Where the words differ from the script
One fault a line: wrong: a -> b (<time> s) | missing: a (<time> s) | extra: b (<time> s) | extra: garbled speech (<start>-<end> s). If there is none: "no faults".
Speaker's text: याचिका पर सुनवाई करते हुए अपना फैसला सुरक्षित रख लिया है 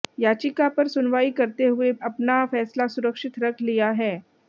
no faults